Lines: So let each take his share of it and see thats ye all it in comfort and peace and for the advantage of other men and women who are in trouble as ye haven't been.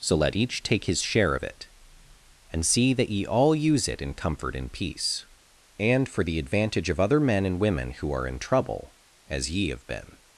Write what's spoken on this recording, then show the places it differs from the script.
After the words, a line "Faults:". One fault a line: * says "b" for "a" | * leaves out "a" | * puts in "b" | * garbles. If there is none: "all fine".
So let each take his share of it and see that ye all use it in comfort and peace and for the advantage of other men and women who are in trouble as ye have been.
Faults:
* says "that" for "thats"
* puts in "use"
* says "have" for "haven't"